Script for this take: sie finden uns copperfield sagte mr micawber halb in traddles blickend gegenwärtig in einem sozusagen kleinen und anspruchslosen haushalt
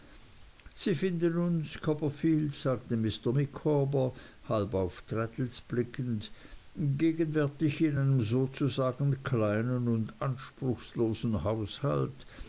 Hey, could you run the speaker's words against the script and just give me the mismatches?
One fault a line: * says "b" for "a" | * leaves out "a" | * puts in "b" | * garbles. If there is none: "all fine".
* says "auf" for "in"